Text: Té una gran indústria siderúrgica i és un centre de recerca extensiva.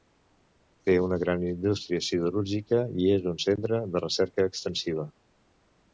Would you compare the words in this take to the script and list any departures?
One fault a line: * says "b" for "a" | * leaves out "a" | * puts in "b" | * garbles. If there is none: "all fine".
all fine